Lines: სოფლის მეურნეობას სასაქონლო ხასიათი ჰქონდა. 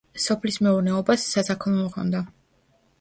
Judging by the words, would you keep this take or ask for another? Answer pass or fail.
fail